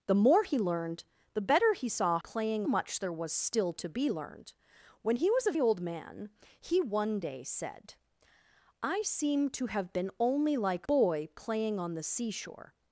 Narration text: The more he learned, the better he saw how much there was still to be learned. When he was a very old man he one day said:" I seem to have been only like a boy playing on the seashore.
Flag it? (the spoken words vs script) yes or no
yes